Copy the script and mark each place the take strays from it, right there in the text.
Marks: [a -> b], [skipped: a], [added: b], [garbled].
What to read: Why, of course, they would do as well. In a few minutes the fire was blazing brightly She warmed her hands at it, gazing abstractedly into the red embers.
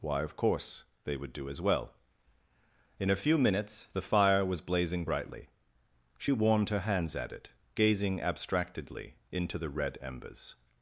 Why, of course, they would do as well. In a few minutes the fire was blazing brightly She warmed her hands at it, gazing abstractedly into the red embers.